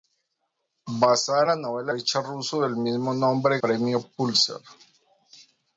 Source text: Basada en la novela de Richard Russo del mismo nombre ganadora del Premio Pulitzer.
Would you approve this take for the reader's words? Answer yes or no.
no